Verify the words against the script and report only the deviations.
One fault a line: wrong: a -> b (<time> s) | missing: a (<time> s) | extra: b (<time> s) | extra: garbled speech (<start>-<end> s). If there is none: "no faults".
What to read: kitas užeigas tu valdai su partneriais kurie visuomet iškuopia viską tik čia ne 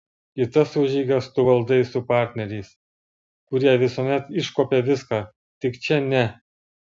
no faults